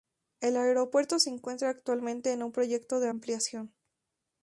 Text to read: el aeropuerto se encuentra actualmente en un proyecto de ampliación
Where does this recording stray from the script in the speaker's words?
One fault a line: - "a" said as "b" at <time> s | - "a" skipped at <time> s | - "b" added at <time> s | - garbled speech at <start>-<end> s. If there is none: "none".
none